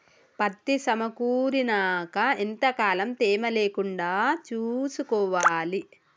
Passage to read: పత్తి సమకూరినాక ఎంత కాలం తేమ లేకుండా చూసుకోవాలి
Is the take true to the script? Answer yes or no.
yes